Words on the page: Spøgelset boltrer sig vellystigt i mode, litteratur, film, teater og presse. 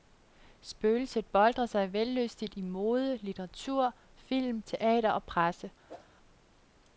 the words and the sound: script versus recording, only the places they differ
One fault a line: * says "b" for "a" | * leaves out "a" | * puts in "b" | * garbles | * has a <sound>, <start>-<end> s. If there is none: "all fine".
* has a whoosh, 5.9-6.1 s